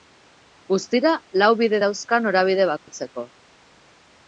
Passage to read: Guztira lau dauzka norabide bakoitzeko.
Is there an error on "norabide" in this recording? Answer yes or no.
no